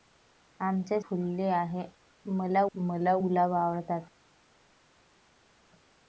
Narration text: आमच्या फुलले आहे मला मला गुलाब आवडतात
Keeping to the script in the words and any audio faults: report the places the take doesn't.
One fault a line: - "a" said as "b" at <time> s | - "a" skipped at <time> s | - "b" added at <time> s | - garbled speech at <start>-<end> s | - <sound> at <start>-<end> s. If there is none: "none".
none